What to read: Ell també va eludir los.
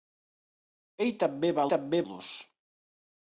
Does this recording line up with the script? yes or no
no